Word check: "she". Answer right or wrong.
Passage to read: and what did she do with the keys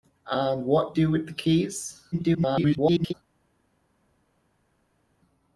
wrong